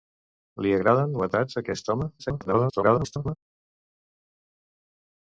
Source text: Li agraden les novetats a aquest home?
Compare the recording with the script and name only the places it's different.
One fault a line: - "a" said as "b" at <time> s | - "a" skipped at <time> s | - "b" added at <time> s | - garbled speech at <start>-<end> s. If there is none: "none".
- "les" skipped at 1.1 s
- garbled speech at 2.2-3.4 s